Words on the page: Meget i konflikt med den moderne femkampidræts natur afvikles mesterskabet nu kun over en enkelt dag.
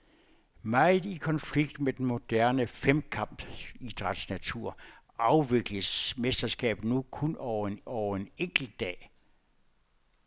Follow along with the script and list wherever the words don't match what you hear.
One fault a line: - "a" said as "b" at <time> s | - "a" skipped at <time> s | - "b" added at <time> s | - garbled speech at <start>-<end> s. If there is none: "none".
- "over en" added at 7.8 s